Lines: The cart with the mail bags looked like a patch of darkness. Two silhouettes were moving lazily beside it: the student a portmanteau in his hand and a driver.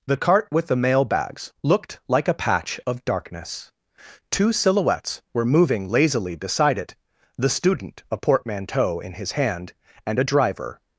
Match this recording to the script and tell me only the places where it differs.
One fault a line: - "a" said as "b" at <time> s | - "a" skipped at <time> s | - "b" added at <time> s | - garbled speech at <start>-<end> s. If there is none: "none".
none